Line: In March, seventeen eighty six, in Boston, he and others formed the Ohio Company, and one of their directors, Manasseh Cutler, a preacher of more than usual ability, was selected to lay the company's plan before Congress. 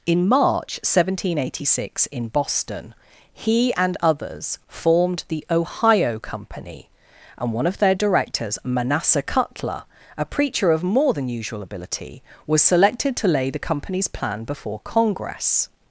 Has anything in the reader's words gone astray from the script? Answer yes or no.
no